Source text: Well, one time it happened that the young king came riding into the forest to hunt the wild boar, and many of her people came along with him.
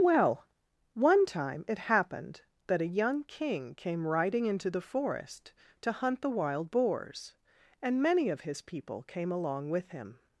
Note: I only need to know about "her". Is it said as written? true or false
false